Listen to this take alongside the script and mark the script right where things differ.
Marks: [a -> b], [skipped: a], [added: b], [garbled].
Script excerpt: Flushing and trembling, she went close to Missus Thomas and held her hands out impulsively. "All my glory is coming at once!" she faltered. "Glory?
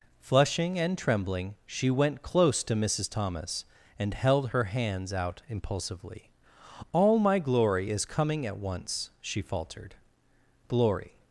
Flushing and trembling, she went close to Missus Thomas and held her hands out impulsively. "All my glory is coming at once!" she faltered. "Glory?